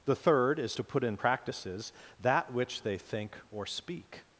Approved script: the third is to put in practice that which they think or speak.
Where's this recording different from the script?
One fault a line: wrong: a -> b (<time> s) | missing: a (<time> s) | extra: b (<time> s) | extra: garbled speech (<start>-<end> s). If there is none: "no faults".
wrong: practice -> practices (1.1 s)